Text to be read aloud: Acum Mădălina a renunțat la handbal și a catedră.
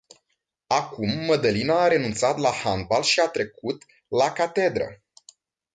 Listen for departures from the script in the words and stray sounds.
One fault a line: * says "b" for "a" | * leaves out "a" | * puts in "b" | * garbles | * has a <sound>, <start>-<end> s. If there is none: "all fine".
* puts in "trecut la"